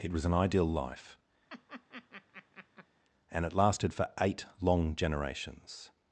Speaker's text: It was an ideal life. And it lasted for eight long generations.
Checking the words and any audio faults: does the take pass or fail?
fail